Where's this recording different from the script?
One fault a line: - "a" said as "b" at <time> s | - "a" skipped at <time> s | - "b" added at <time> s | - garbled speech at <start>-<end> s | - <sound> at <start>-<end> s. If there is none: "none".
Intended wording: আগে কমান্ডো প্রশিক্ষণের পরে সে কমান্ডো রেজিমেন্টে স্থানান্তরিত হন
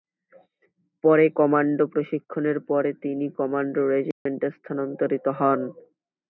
- "আগে" said as "পরে" at 1.0 s
- "সে" said as "তিনি" at 3.0 s
- dropout at 4.1-4.3 s